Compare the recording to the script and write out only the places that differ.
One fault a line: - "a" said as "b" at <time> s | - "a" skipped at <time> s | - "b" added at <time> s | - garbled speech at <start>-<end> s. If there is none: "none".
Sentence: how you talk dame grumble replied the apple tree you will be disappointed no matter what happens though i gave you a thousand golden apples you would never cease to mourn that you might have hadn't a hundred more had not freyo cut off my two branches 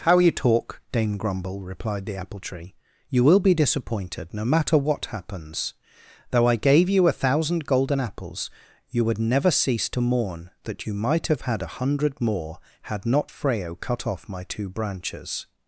- "hadn't" said as "had" at 11.4 s